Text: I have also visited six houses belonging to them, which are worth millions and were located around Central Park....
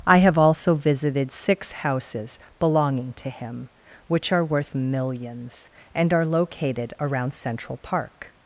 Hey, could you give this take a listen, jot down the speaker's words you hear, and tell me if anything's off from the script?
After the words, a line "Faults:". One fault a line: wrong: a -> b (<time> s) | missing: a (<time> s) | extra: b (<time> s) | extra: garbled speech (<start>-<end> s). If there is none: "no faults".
I have also visited six houses belonging to him, which are worth millions and are located around Central Park....
Faults:
wrong: them -> him (3.3 s)
wrong: were -> are (6.1 s)